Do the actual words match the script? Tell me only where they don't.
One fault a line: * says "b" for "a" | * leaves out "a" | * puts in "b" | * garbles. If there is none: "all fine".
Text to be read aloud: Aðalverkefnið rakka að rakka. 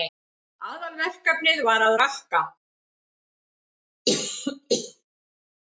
* says "var" for "rakka"